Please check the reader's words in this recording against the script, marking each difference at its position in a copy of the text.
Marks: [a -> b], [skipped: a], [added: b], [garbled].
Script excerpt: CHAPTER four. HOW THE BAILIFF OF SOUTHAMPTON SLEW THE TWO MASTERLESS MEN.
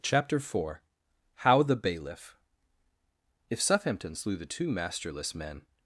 CHAPTER four. HOW THE BAILIFF [OF -> If] SOUTHAMPTON SLEW THE TWO MASTERLESS MEN.